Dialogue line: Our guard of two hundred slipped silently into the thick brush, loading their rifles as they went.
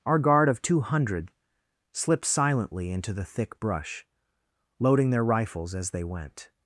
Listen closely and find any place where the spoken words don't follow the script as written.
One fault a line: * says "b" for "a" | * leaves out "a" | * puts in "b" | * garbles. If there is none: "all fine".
all fine